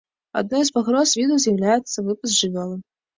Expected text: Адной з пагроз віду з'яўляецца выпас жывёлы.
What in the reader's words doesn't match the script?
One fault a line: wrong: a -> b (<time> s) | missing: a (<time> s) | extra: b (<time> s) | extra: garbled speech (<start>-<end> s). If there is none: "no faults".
no faults